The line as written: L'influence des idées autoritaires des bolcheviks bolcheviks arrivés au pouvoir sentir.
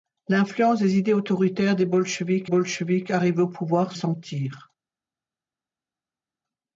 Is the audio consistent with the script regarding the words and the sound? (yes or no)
yes